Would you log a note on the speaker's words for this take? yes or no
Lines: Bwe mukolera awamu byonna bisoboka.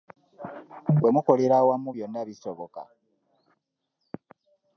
no